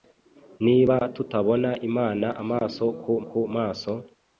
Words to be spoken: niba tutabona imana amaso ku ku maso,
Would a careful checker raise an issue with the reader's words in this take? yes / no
no